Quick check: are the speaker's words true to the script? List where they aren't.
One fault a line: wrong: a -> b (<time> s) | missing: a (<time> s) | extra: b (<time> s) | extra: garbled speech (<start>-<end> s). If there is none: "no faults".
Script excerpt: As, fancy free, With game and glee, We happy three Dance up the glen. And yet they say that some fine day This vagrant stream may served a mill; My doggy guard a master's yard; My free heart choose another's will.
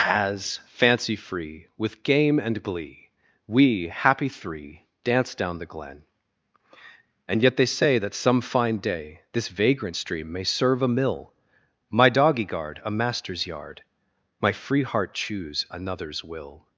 wrong: up -> down (5.3 s)
wrong: served -> serve (10.4 s)